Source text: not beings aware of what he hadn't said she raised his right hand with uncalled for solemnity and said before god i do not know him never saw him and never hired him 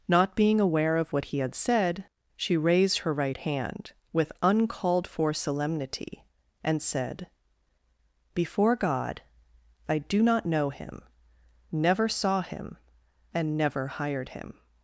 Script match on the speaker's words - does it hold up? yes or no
no